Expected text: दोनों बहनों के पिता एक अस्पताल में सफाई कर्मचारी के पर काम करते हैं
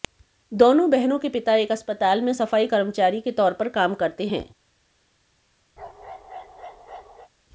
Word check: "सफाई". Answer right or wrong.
right